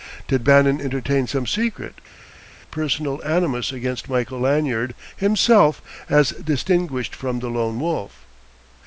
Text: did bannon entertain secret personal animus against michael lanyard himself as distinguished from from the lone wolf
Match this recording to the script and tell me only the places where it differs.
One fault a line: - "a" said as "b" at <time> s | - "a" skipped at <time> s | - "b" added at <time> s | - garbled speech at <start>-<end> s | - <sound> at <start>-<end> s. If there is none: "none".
- "some" added at 1.3 s
- "from" skipped at 7.4 s